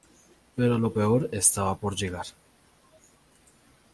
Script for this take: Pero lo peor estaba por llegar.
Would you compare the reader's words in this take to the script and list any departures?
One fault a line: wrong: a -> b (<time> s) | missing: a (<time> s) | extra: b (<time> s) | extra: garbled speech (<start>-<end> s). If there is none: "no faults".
no faults